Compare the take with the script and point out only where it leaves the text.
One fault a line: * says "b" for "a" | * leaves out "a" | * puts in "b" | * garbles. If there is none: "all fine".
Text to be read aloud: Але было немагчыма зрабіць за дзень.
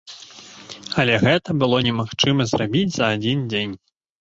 * puts in "гэта"
* puts in "адзін"